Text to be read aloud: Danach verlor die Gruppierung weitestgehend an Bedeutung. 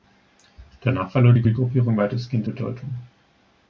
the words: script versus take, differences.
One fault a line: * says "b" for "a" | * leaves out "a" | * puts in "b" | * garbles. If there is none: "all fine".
* puts in "die"
* leaves out "an"